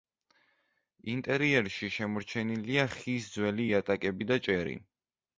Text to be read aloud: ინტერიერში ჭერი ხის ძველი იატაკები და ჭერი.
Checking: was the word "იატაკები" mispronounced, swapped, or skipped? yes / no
no